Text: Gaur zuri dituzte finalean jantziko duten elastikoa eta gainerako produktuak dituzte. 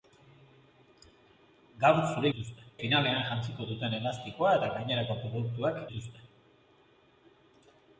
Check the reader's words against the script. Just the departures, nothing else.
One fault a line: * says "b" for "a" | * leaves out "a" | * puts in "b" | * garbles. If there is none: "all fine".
all fine